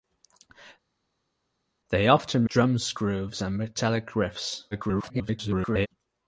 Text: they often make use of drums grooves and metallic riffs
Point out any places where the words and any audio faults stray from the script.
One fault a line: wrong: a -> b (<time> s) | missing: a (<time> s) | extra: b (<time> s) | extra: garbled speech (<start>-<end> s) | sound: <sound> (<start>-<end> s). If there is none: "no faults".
missing: make use of (2.4 s)
extra: garbled speech (4.7-5.9 s)